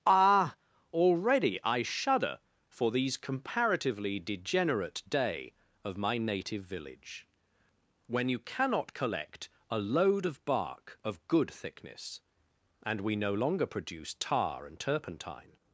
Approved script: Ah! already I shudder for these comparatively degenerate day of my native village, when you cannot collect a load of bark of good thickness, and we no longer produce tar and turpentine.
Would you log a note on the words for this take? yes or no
no